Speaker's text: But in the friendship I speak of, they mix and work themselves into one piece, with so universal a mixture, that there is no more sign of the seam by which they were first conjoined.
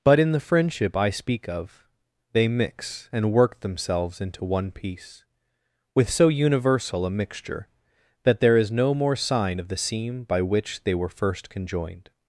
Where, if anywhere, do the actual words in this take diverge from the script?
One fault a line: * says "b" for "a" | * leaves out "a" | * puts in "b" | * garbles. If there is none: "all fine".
all fine